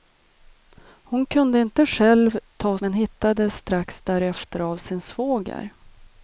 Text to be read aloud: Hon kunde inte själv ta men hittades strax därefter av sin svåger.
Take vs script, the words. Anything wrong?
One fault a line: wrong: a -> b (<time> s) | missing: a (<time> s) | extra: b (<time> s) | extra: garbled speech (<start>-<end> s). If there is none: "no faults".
no faults